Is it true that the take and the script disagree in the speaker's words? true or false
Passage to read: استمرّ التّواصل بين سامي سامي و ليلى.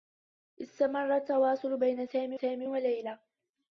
false